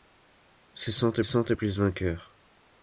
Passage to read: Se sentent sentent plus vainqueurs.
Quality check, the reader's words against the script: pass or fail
pass